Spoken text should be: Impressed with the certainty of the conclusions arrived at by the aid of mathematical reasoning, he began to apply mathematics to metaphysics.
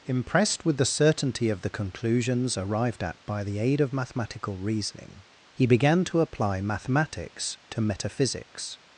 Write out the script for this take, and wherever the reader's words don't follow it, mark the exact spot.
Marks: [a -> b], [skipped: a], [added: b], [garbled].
Impressed with the certainty of the conclusions arrived at by the aid of mathematical reasoning, he began to apply mathematics to metaphysics.